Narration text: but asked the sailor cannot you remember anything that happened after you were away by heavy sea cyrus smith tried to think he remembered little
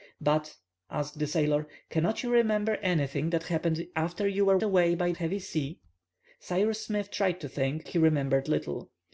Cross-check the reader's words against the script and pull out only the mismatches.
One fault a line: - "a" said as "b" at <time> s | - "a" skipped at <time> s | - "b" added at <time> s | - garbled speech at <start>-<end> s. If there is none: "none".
none